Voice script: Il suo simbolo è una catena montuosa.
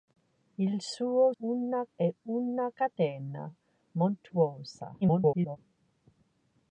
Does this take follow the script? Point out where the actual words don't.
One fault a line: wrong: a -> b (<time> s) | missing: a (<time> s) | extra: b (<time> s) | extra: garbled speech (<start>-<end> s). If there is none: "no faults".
wrong: simbolo -> una (1.4 s)
extra: garbled speech (5.0-5.6 s)